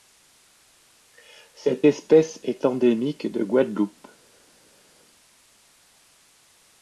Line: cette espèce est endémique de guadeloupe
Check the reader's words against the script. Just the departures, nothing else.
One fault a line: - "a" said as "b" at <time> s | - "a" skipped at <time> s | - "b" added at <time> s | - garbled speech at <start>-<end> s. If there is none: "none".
none